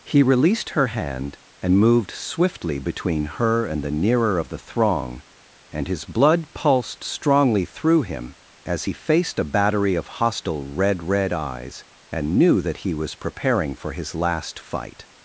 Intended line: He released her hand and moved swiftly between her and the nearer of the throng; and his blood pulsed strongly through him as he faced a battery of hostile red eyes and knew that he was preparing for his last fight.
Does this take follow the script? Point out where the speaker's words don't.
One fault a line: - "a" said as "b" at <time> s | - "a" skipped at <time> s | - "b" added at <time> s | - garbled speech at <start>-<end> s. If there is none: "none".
- "red" added at 11.0 s